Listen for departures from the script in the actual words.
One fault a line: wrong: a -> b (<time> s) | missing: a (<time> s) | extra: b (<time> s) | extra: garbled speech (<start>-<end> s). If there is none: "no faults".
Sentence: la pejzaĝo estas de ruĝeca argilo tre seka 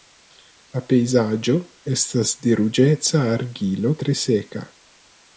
no faults